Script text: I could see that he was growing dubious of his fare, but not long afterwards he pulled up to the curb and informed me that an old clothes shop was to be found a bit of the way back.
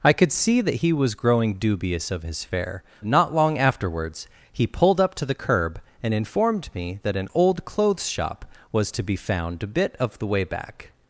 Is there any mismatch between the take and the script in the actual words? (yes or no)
yes